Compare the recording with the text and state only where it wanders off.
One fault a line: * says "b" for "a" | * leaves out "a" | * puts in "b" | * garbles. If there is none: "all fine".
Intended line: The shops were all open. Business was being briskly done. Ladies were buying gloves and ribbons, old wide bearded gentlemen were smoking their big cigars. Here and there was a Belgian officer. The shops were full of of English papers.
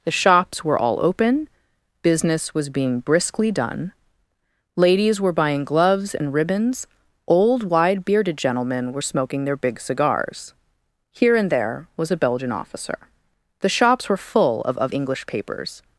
all fine